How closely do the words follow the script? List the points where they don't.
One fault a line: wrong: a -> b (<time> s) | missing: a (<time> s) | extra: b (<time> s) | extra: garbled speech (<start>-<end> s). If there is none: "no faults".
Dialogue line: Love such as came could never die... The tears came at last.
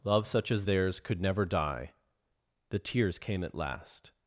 wrong: came -> theirs (0.6 s)